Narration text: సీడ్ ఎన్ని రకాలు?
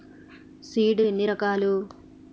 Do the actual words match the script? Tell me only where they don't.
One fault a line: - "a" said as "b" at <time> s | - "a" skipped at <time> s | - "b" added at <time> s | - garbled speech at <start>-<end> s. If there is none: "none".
none